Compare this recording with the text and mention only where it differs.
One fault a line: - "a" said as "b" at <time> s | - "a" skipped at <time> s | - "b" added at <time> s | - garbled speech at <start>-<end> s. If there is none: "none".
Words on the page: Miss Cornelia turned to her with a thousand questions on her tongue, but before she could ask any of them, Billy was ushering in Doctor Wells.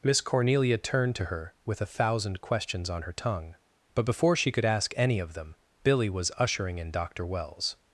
none